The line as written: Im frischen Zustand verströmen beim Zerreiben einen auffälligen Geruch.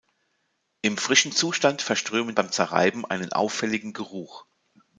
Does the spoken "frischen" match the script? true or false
true